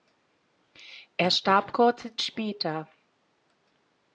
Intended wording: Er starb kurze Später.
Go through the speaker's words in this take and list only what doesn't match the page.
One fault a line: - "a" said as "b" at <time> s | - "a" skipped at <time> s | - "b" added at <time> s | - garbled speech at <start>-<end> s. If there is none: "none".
none